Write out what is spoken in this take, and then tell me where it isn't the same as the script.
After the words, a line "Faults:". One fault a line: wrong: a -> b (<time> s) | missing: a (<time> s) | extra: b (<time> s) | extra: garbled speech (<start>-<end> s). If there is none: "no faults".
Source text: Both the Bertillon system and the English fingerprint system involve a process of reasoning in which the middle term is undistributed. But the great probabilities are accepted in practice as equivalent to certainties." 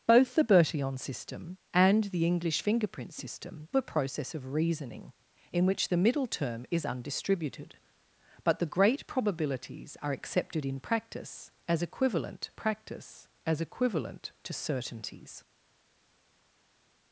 Both the Bertillon system and the English fingerprint system a process of reasoning in which the middle term is undistributed. But the great probabilities are accepted in practice as equivalent practice as equivalent to certainties."
Faults:
missing: involve (3.7 s)
extra: practice as equivalent (12.5 s)